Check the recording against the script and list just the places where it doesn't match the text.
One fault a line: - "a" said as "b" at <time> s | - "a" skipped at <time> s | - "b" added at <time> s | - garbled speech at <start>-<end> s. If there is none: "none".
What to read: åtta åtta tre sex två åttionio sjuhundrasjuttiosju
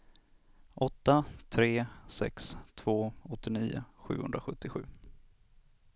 - "åtta" skipped at 1.2 s